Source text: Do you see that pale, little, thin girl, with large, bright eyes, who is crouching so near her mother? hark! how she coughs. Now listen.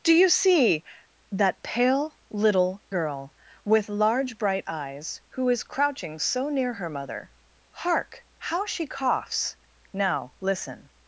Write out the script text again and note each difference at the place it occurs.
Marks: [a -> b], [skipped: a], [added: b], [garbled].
Do you see that pale, little, [skipped: thin] girl, with large, bright eyes, who is crouching so near her mother? hark! how she coughs. Now listen.